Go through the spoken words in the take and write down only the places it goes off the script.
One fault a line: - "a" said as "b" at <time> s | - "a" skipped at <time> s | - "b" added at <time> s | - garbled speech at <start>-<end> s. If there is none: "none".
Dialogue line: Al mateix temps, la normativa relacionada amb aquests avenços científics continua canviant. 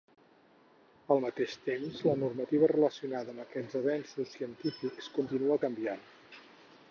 none